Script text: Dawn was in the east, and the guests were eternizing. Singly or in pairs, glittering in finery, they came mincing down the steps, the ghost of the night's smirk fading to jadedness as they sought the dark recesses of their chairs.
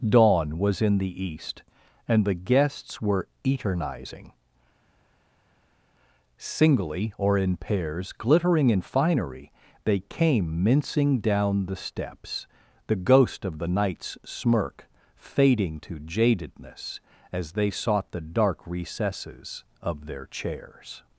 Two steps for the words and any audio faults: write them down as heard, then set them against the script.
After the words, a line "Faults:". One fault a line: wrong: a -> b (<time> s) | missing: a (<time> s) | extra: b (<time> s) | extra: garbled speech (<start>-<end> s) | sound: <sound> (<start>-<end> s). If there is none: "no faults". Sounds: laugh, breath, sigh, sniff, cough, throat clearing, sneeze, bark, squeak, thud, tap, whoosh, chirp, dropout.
Dawn was in the east, and the guests were eternizing. Singly or in pairs, glittering in finery, they came mincing down the steps, the ghost of the night's smirk fading to jadedness as they sought the dark recesses of their chairs.
Faults:
no faults